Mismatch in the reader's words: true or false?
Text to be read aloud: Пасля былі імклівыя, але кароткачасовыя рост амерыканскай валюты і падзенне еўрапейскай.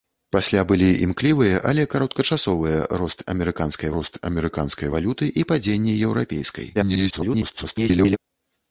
true